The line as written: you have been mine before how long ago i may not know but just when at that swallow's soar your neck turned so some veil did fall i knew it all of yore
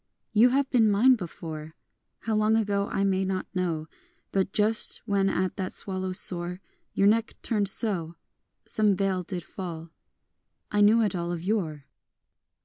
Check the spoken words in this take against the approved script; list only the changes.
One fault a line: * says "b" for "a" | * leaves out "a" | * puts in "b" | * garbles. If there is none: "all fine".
all fine